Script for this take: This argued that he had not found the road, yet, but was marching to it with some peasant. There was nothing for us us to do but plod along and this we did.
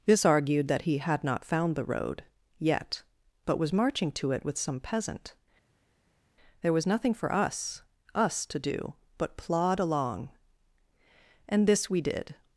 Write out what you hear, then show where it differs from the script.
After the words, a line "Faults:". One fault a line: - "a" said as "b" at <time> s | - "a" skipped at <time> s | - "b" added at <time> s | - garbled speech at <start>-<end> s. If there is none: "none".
This argued that he had not found the road, yet, but was marching to it with some peasant. There was nothing for us us to do but plod along and this we did.
Faults:
none